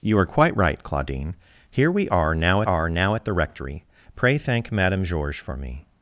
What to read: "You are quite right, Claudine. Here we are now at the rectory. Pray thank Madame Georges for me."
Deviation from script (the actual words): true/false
true